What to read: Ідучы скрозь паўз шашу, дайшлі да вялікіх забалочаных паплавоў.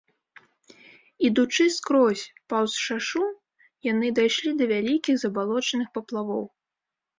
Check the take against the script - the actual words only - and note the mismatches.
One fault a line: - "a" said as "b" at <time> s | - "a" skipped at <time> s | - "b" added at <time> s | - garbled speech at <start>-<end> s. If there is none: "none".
- "яны" added at 3.9 s